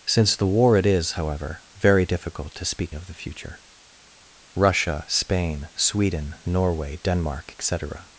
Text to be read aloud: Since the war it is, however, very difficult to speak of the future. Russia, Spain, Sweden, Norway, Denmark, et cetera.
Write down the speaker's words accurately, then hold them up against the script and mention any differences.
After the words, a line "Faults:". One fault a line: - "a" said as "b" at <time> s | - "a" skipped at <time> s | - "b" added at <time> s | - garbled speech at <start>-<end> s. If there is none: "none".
Since the war it is, however, very difficult to speak of the future. Russia, Spain, Sweden, Norway, Denmark, et cetera.
Faults:
none